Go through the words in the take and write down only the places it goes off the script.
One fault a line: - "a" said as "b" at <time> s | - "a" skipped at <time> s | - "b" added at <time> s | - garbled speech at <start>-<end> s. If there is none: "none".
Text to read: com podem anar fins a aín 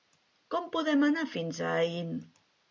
none